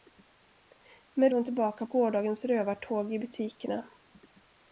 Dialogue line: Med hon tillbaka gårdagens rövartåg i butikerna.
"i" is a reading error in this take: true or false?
false